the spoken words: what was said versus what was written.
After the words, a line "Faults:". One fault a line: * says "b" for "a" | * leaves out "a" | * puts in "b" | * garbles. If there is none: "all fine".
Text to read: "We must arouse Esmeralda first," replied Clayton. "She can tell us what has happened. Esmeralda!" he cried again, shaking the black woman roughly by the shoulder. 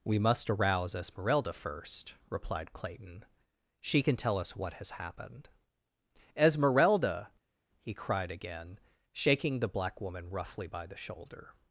"We must arouse Esmeralda first," replied Clayton. "She can tell us what has happened. Esmeralda!" he cried again, shaking the black woman roughly by the shoulder.
Faults:
all fine